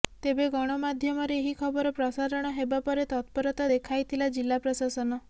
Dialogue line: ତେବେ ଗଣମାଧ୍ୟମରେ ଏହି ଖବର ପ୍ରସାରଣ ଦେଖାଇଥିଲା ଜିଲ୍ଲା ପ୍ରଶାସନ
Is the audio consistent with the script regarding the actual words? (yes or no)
no